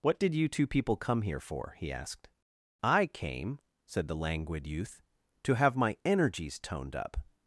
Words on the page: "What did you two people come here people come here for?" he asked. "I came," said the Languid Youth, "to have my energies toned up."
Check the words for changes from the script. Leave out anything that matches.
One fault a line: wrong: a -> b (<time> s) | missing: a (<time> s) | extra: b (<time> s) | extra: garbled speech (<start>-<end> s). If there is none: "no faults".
missing: people come here (1.4 s)